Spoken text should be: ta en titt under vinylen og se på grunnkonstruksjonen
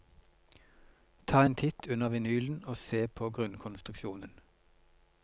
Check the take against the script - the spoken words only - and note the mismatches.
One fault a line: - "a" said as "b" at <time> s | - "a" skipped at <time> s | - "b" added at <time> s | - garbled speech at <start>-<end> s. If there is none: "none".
none